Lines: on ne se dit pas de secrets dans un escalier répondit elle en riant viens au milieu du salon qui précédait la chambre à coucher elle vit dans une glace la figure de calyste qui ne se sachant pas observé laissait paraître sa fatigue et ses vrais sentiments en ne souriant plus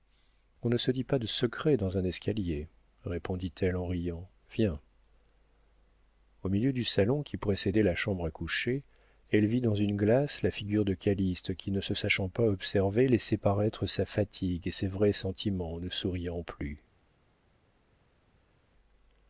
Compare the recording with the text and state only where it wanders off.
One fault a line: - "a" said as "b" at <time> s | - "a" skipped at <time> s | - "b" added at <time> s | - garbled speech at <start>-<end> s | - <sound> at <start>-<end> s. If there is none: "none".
none